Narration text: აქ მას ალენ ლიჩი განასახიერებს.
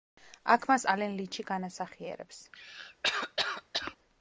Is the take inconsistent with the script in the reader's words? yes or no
no